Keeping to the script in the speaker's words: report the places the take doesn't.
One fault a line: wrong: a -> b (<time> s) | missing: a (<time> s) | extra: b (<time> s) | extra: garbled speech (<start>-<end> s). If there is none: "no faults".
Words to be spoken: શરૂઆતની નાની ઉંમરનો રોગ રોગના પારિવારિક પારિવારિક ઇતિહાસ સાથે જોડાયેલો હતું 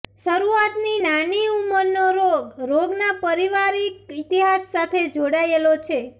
missing: પારિવારિક (4.2 s)
wrong: હતું -> છે (5.9 s)